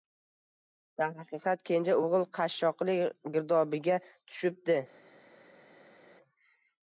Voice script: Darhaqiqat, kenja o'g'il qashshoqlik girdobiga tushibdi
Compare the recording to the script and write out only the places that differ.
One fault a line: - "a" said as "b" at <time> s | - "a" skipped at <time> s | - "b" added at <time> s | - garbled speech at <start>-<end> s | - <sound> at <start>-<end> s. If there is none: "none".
none